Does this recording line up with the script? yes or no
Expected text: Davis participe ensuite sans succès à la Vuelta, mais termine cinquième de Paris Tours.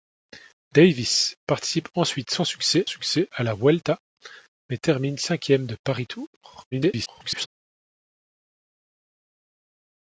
no